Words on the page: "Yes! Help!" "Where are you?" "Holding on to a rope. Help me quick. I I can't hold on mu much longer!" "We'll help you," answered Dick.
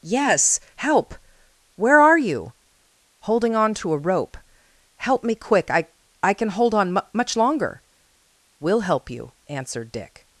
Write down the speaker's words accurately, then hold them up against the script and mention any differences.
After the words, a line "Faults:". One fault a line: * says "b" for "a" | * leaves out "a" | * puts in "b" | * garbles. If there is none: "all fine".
"Yes! Help!" "Where are you?" "Holding on to a rope. Help me quick. I I can hold on mu much longer!" "We'll help you," answered Dick.
Faults:
* says "can" for "can't"